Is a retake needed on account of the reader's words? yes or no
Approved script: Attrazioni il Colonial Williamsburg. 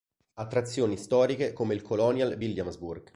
yes